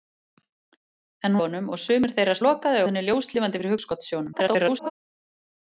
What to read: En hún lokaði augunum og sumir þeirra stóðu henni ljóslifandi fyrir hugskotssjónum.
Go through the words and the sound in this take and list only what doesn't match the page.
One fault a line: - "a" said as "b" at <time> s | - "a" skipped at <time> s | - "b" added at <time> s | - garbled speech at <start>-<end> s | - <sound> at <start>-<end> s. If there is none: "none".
- "hún lokaði" skipped at 1.4 s
- "stóðu" said as "lokaði" at 2.4 s
- garbled speech at 4.3-4.9 s